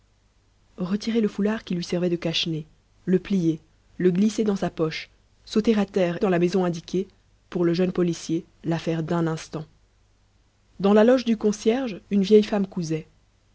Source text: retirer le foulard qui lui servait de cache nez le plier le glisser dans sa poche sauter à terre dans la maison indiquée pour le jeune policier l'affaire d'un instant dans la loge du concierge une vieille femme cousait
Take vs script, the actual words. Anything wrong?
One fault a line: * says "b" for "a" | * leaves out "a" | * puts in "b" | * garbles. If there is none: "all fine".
all fine